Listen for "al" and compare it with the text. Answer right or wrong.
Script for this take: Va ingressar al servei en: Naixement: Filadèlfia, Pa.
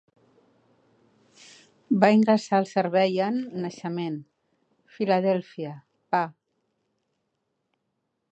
right